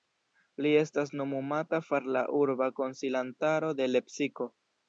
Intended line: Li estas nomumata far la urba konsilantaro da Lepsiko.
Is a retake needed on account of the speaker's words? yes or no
yes